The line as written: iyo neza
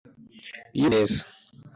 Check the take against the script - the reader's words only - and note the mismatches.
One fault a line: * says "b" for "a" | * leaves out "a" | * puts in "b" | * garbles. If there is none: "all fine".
all fine